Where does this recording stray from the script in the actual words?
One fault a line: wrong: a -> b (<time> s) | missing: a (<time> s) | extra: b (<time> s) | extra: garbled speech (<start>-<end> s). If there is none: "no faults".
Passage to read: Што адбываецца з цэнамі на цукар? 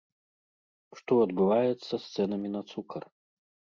no faults